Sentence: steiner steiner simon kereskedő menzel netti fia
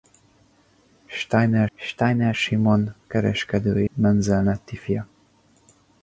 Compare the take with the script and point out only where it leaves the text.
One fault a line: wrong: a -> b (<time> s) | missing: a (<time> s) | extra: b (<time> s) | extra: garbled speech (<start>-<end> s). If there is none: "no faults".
no faults